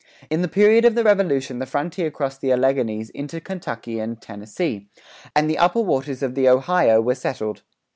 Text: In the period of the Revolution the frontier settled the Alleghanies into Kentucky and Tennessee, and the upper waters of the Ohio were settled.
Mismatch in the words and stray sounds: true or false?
true